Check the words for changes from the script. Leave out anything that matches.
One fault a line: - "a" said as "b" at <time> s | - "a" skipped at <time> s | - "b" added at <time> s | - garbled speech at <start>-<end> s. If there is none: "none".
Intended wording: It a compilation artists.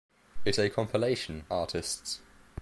none